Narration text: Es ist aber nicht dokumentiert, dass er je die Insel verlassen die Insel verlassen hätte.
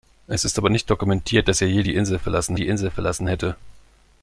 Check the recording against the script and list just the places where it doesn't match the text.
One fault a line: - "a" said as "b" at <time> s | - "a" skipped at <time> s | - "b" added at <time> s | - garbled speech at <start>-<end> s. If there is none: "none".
none